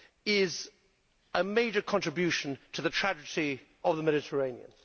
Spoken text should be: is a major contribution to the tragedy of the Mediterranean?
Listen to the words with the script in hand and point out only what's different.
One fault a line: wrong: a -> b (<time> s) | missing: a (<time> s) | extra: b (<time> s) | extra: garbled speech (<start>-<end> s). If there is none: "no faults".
no faults